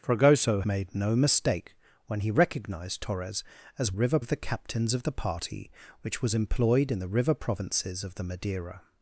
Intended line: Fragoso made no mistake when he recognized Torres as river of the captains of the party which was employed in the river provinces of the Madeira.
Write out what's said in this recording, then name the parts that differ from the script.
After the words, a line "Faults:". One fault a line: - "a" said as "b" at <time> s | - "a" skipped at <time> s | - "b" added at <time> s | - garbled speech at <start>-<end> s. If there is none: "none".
Fragoso made no mistake when he recognized Torres as river of the captains of the party which was employed in the river provinces of the Madeira.
Faults:
none